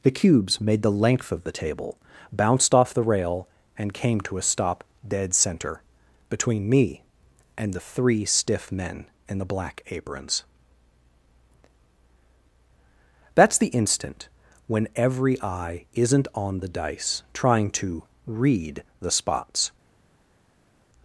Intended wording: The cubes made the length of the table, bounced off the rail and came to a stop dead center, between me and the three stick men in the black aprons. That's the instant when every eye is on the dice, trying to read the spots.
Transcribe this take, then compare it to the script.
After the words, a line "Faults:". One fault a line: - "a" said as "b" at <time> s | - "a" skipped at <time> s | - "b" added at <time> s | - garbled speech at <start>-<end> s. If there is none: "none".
The cubes made the length of the table, bounced off the rail and came to a stop dead center, between me and the three stiff men in the black aprons. That's the instant when every eye isn't on the dice, trying to read the spots.
Faults:
- "stick" said as "stiff" at 8.3 s
- "is" said as "isn't" at 15.9 s